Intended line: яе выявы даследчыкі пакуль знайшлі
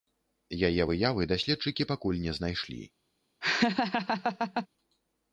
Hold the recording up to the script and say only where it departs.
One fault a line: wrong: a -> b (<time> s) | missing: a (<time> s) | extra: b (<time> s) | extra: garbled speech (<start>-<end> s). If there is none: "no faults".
extra: не (2.3 s)